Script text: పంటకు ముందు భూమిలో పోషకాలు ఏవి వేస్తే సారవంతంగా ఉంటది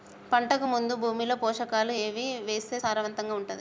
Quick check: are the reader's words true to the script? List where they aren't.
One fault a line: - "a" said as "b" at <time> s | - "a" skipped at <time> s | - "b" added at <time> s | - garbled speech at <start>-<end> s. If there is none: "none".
none